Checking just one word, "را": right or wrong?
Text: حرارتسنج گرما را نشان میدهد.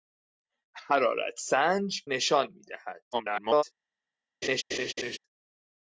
wrong